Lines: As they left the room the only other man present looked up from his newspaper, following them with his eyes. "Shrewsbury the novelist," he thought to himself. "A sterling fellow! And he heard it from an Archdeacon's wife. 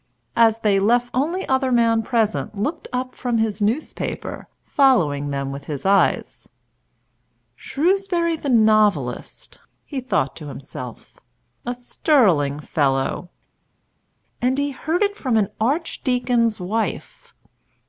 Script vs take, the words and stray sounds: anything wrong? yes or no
yes